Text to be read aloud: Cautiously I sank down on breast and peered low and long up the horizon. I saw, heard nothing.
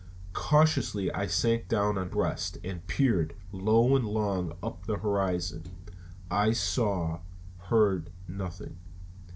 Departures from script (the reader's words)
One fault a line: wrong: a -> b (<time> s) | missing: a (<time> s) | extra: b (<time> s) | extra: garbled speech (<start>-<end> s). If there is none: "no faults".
no faults